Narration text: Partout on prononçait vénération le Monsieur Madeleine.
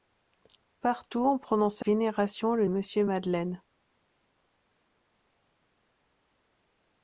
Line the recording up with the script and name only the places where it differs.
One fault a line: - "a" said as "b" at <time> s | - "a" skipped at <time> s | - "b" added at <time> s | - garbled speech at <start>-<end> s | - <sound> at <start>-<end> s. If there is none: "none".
none